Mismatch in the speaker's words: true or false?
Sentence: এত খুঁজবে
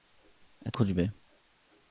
false